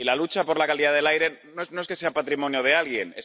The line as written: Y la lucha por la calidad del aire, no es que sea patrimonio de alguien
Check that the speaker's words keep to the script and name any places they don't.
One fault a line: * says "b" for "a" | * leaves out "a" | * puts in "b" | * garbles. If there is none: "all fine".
all fine